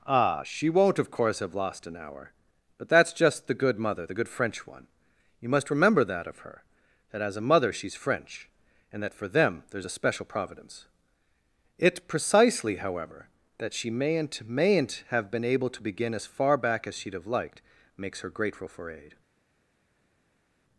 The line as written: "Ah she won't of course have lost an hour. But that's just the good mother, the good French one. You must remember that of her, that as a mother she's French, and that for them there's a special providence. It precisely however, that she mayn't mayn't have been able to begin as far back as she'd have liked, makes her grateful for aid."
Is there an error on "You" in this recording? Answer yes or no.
no